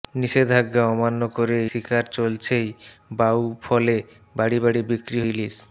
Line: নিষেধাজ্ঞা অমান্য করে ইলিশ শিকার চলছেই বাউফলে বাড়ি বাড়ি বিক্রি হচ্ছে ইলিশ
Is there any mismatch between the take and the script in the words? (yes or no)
yes